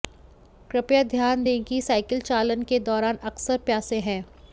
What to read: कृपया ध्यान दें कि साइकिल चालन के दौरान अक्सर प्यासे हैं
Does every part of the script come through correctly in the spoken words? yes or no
yes